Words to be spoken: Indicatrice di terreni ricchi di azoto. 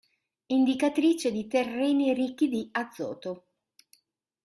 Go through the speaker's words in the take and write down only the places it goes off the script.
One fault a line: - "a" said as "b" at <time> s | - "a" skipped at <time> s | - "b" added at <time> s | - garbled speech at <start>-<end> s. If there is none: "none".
none